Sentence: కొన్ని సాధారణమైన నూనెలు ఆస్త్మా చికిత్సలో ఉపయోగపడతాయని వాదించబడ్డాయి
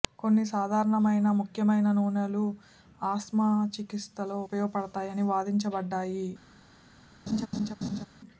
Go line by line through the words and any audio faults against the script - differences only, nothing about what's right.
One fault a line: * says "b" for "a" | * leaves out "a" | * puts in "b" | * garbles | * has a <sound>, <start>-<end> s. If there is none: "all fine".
* puts in "ముఖ్యమైన"
* has a laugh, 7.3-8.1 s